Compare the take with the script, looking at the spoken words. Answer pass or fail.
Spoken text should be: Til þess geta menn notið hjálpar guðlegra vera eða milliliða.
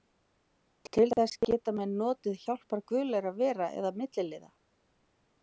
pass